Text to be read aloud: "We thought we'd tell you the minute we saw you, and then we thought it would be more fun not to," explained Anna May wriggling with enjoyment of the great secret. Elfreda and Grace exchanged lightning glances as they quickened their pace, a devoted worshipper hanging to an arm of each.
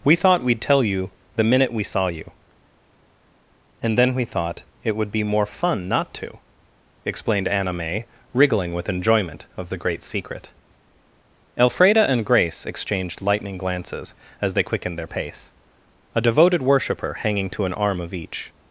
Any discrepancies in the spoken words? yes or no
no